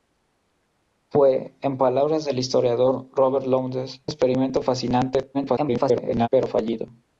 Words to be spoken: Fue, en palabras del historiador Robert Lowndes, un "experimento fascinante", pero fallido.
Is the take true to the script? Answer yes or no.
no